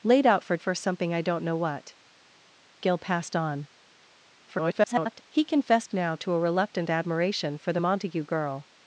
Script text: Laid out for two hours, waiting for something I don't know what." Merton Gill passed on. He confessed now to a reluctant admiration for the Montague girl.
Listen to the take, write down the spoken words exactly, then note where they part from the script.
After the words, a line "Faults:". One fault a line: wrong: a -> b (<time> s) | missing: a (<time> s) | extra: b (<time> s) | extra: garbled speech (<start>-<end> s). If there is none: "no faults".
Laid out for for something I don't know what." Gill passed on. [garbled] He confessed now to a reluctant admiration for the Montague girl.
Faults:
missing: two hours waiting (0.6 s)
missing: Merton (2.0 s)
extra: garbled speech (4.5-5.2 s)